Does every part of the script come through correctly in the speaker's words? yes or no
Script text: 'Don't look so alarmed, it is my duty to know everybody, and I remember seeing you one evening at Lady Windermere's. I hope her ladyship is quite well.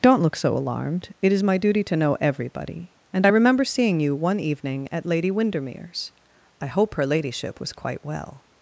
no